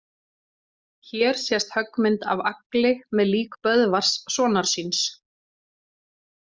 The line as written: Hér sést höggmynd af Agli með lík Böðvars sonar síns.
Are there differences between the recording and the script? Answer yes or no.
no